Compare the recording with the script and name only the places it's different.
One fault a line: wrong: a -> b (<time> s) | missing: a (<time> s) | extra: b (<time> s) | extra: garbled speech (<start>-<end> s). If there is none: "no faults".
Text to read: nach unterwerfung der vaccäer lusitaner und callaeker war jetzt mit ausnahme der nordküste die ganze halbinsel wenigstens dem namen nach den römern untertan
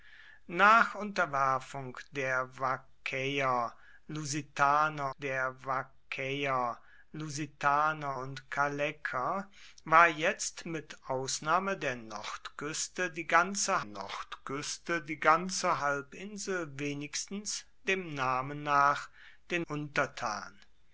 extra: der vaccäer lusitaner (5.2 s)
extra: nordküste die ganze (13.8 s)
missing: römern (19.6 s)